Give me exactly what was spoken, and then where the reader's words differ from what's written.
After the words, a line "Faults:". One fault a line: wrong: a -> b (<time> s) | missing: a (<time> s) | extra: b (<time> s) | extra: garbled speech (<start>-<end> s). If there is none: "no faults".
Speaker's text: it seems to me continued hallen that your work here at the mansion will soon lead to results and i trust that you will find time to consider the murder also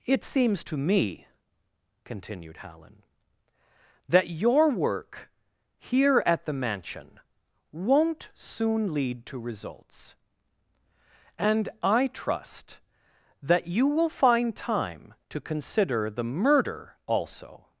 it seems to me continued hallen that your work here at the mansion won't soon lead to results and i trust that you will find time to consider the murder also
Faults:
wrong: will -> won't (7.7 s)